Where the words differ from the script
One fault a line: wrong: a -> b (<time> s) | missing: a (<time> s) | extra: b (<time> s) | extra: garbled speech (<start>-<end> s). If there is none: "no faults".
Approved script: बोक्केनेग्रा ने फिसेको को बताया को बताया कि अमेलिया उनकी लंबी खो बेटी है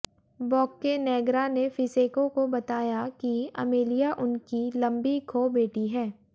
missing: को बताया (3.1 s)